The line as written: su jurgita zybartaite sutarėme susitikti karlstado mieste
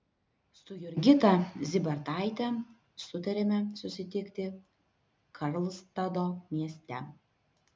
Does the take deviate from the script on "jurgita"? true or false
false